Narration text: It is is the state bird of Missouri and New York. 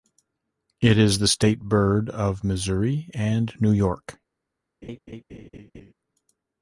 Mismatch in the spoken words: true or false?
true